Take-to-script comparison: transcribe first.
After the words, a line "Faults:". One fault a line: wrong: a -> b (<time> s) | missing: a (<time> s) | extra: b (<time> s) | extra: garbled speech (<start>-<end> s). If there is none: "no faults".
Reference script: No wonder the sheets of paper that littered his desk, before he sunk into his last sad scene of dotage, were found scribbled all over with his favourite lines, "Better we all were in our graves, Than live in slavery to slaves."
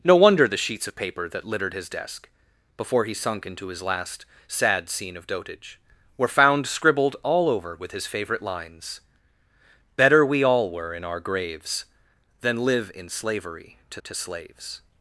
No wonder the sheets of paper that littered his desk, before he sunk into his last sad scene of dotage, were found scribbled all over with his favourite lines, "Better we all were in our graves, Than live in slavery to to slaves."
Faults:
extra: to (14.0 s)